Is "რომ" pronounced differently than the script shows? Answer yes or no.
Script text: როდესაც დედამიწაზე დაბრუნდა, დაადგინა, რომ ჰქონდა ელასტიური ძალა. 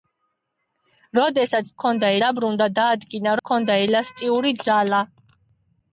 yes